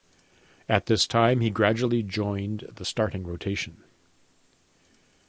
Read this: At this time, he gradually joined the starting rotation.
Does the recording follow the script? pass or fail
pass